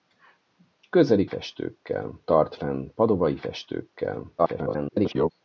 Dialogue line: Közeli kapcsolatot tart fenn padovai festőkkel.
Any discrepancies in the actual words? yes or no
yes